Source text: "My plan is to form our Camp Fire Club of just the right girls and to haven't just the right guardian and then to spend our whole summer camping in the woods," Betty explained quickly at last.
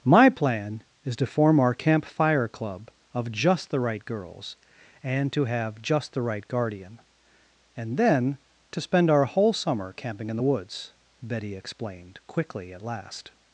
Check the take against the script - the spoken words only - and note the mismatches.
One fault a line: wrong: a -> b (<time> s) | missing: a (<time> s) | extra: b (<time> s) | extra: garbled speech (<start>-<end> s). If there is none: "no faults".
wrong: haven't -> have (5.5 s)